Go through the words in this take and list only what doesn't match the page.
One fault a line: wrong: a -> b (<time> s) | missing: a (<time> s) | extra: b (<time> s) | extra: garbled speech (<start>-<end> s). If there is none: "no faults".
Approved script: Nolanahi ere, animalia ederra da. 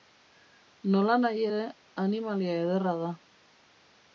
no faults